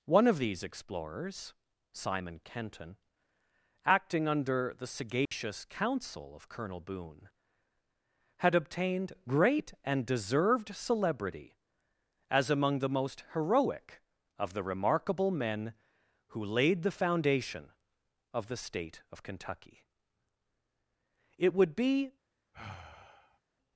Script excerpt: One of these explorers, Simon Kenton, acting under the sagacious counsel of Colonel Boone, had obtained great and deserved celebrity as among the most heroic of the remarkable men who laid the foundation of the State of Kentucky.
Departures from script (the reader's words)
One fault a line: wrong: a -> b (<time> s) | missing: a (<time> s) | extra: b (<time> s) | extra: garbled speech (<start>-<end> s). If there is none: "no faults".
extra: It would be (21.4 s)